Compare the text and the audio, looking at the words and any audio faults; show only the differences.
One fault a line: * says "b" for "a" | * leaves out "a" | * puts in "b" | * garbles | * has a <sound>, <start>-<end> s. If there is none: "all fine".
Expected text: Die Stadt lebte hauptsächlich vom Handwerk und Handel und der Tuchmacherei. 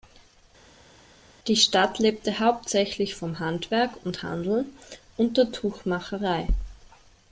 all fine